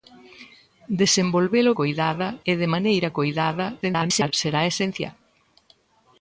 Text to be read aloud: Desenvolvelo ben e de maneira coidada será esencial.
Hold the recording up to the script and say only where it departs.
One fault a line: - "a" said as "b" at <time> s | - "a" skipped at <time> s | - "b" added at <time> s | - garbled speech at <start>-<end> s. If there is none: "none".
- "ben" said as "coidada" at 1.8 s
- garbled speech at 3.8-4.3 s